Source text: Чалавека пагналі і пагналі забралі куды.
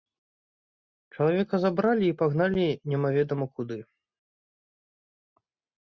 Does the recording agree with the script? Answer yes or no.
no